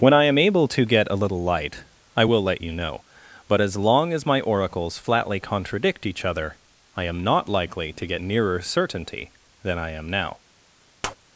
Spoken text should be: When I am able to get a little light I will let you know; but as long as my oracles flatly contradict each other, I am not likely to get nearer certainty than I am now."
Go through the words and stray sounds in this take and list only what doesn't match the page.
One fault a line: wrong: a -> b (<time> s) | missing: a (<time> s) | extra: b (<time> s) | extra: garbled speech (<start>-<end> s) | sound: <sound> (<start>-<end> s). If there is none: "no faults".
sound: tap (11.0-11.2 s)